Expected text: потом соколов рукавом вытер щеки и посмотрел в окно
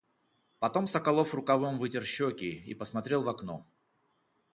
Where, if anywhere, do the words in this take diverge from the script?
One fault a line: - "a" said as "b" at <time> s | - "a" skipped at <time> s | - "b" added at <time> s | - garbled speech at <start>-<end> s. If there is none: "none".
none